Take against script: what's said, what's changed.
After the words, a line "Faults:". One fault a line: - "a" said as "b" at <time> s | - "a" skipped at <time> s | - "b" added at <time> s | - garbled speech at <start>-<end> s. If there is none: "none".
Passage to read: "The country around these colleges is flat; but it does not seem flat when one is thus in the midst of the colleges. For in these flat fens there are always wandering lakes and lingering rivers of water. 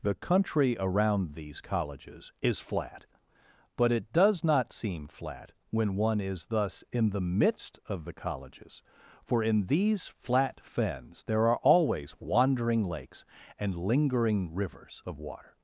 "The country around these colleges is flat; but it does not seem flat when one is thus in the midst of the colleges. For in these flat fens there are always wandering lakes and lingering rivers of water.
Faults:
none